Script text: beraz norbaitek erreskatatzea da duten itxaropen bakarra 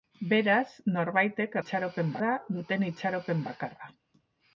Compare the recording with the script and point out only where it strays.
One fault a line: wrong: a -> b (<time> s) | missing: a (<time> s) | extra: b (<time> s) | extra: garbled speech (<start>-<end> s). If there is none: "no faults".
wrong: erreskatatzea -> itxaropen (1.6 s)